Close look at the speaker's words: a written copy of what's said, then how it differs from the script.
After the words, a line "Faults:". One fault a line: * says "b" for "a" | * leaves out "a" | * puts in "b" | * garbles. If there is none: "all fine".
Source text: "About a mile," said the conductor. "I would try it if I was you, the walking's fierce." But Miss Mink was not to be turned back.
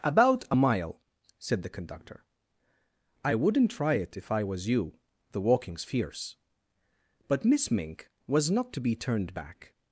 "About a mile," said the conductor. "I wouldn't try it if I was you, the walking's fierce." But Miss Mink was not to be turned back.
Faults:
* says "wouldn't" for "would"